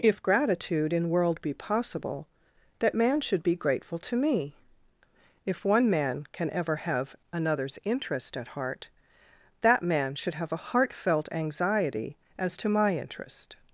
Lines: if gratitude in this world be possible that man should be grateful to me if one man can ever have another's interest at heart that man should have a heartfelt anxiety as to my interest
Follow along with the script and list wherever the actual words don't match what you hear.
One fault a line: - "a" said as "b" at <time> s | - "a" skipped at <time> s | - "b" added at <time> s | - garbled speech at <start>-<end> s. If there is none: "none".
- "this" skipped at 1.1 s